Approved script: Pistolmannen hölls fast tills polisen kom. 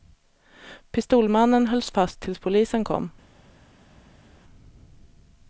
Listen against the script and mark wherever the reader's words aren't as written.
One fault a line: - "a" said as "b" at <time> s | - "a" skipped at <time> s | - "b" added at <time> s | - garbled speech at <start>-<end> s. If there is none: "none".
none